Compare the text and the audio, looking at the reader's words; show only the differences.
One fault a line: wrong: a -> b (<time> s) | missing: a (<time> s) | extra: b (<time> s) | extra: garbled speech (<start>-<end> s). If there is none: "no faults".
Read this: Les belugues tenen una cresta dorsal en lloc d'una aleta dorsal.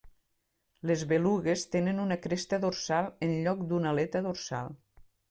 no faults